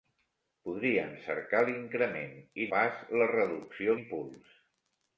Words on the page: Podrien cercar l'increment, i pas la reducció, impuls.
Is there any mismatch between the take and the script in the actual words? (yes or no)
no